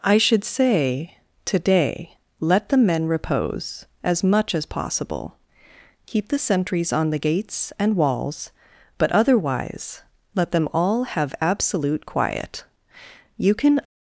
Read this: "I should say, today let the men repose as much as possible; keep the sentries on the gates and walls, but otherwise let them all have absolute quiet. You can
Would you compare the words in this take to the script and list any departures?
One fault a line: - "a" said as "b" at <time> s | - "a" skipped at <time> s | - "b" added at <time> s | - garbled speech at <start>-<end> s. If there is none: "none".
none